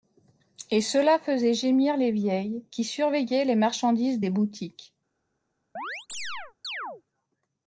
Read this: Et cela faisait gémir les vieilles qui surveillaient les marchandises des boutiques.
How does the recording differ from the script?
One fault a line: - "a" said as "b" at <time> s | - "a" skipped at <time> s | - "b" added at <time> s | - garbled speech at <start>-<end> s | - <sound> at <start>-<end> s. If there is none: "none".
- chirp at 5.8-7.0 s